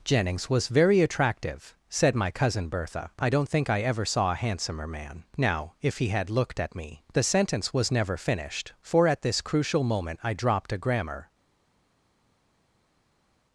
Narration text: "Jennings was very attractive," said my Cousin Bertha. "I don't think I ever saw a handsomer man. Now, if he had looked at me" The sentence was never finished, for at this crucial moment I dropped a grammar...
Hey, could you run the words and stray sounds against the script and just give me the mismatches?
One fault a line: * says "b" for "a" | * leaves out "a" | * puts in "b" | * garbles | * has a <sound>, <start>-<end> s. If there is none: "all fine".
all fine